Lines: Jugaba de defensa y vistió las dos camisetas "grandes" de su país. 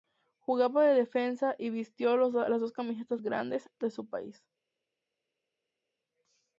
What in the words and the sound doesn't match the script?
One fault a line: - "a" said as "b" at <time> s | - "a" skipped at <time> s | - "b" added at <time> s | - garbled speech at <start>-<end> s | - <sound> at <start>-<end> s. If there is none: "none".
none